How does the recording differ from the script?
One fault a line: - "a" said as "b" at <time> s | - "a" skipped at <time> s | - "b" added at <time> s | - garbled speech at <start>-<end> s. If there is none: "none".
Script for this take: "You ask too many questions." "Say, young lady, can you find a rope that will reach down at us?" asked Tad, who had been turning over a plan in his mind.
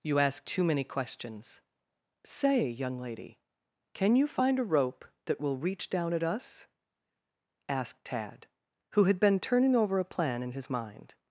none